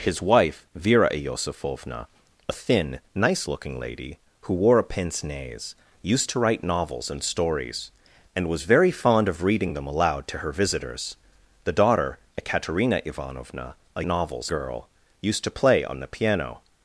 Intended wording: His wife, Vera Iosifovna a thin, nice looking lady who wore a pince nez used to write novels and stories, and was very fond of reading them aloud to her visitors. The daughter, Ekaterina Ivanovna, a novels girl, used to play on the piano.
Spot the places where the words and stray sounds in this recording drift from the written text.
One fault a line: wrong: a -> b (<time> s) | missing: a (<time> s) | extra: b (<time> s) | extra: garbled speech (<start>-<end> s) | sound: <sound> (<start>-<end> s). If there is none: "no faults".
no faults